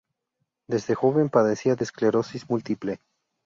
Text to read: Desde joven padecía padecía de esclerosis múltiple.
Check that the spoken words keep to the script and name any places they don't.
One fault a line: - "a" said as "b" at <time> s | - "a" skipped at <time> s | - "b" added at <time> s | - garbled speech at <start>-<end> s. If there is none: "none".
- "padecía" skipped at 1.8 s